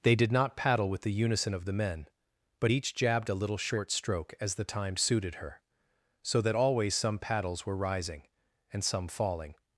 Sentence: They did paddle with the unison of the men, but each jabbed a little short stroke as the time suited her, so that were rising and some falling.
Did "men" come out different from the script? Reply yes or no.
no